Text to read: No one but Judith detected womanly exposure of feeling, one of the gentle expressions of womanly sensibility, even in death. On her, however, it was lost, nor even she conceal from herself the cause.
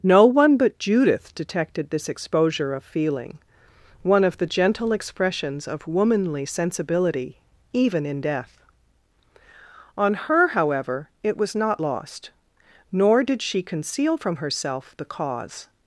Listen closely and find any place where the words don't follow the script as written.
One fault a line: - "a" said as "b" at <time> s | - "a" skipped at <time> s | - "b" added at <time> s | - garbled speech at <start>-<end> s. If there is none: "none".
- "womanly" said as "this" at 1.9 s
- "not" added at 11.5 s
- "even" said as "did" at 13.2 s